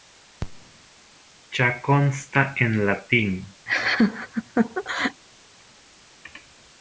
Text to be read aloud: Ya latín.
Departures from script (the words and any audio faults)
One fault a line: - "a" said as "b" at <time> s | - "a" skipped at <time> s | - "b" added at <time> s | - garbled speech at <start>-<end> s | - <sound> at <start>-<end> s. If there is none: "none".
- "consta en" added at 1.8 s
- laugh at 3.7-5.2 s